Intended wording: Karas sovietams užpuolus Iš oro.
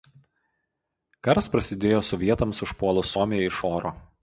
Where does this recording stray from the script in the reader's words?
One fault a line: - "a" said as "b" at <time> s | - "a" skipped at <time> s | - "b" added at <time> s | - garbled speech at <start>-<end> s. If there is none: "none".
- "prasidėjo" added at 1.5 s
- "Suomiją" added at 3.1 s